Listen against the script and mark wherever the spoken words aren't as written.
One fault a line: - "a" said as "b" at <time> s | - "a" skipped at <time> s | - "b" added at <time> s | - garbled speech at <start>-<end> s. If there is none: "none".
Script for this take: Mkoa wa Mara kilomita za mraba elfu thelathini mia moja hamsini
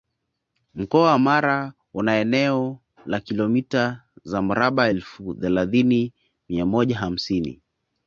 - "una eneo la" added at 1.9 s